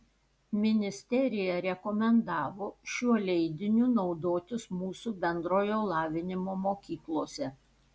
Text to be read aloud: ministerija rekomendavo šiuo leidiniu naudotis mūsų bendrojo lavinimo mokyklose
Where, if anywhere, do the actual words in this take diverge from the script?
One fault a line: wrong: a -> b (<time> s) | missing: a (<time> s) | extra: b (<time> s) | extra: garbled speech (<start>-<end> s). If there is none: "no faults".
no faults